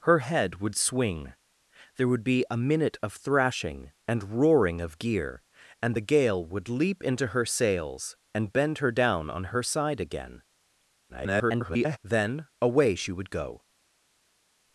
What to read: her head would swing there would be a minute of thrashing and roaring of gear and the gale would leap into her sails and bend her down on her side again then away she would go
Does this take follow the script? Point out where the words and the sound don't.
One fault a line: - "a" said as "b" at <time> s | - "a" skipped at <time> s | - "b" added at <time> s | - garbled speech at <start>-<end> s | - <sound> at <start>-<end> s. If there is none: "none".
- garbled speech at 11.1-12.0 s